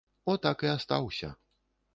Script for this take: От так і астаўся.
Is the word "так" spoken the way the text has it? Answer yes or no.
yes